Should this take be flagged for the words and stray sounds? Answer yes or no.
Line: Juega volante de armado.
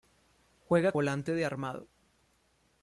no